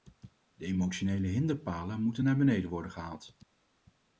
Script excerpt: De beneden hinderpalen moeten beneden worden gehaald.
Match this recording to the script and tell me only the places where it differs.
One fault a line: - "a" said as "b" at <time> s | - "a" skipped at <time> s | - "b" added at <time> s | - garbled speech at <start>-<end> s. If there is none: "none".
- "beneden" said as "emotionele" at 0.7 s
- "naar" added at 2.2 s